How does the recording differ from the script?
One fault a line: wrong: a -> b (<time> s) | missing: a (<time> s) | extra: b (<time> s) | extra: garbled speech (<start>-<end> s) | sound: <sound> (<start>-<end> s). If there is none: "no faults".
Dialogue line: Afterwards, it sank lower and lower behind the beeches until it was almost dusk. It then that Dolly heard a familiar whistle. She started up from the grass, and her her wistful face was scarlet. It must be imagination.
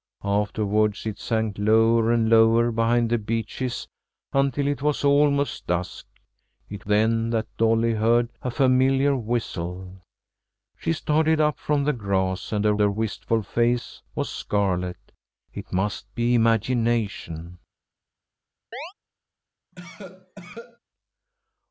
sound: chirp (18.7-18.9 s)
sound: cough (19.7-20.8 s)